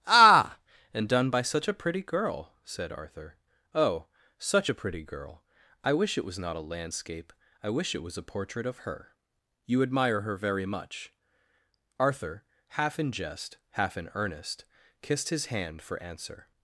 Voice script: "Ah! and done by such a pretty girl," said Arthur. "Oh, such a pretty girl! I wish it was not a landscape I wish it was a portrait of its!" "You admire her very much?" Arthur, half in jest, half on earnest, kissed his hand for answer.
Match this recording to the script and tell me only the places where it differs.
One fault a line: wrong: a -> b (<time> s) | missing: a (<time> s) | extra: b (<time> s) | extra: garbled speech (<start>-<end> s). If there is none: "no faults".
wrong: its -> her (8.9 s)
wrong: on -> in (14.0 s)